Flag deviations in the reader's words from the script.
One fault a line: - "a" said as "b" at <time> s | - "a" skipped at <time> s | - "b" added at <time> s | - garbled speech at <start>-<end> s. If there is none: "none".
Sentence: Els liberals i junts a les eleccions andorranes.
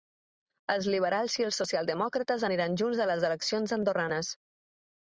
- "els socialdemòcrates aniran" added at 1.5 s